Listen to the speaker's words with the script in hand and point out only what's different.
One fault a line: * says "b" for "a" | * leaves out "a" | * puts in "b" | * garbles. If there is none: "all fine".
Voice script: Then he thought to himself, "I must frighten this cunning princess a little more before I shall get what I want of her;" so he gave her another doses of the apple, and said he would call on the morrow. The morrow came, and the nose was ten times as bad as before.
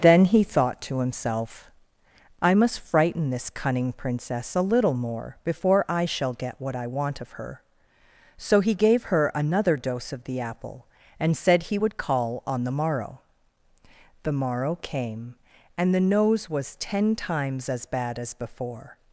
* says "dose" for "doses"